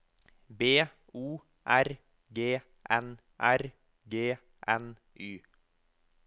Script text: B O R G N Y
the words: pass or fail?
fail